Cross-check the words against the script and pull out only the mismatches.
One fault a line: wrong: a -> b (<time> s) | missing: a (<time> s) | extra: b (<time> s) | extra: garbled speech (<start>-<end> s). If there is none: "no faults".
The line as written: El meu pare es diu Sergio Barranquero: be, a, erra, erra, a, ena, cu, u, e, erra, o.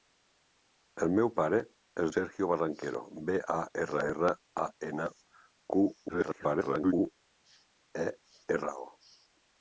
missing: diu (2.1 s)
extra: garbled speech (6.1-6.9 s)